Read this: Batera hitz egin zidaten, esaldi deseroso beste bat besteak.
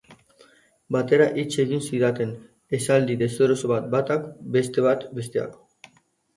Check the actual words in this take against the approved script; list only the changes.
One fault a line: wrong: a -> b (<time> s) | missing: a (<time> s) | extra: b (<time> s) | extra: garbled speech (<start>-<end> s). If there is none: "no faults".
extra: bat batak (3.8 s)